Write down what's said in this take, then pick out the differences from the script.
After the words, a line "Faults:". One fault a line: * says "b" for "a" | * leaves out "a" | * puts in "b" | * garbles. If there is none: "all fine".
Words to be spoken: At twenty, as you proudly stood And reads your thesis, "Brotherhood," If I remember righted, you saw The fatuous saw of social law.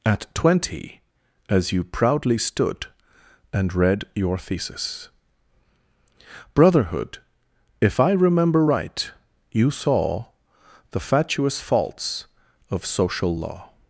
At twenty, as you proudly stood And read your thesis, "Brotherhood," If I remember right, you saw The fatuous faults of social law.
Faults:
* says "read" for "reads"
* says "right" for "righted"
* says "faults" for "saw"